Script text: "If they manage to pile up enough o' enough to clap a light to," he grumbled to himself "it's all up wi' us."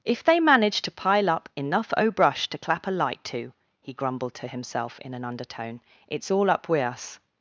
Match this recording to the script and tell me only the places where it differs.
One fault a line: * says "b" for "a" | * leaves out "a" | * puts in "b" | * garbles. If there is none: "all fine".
* says "brush" for "enough"
* puts in "in an undertone"